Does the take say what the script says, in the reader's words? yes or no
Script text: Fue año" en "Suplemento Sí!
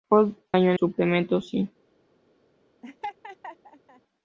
yes